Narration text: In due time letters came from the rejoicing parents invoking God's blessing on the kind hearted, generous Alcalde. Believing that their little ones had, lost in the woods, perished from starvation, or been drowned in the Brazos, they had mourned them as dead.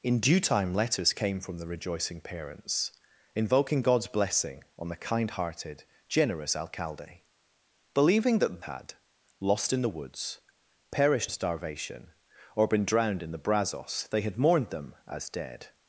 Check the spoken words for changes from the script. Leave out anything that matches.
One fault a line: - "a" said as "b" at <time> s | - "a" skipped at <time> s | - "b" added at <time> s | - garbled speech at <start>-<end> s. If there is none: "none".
- "their little ones" skipped at 8.7 s
- "from" skipped at 11.3 s